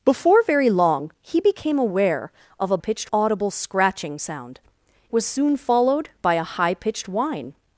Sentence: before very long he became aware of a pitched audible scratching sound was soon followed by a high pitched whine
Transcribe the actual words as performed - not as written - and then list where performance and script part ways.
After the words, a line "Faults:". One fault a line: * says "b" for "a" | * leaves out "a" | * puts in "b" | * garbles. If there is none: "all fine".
before very long he became aware of a pitched audible scratching sound was soon followed by a high pitched whine
Faults:
all fine